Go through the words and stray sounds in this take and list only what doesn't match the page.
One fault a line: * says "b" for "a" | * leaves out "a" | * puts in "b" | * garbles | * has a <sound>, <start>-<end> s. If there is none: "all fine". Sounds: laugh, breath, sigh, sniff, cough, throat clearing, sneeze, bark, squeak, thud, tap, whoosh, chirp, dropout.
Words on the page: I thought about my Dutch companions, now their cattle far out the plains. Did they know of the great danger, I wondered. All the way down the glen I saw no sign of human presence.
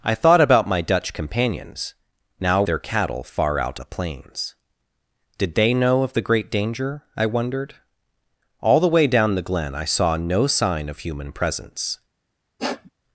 * has a sniff, 12.6-12.9 s